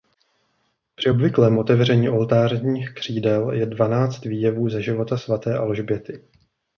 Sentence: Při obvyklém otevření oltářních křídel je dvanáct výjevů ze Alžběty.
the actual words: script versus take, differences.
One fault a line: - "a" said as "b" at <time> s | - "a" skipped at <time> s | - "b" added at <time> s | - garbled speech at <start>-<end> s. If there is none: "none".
- "života svaté" added at 4.8 s